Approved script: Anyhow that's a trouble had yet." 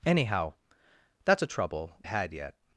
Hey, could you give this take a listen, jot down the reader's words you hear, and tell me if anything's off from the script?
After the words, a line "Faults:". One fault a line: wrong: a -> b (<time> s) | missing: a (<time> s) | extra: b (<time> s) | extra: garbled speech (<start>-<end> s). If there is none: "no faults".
Anyhow that's a trouble had yet."
Faults:
no faults